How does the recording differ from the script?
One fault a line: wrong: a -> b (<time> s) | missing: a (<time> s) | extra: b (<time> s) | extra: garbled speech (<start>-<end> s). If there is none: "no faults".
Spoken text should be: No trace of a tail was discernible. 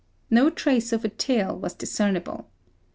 no faults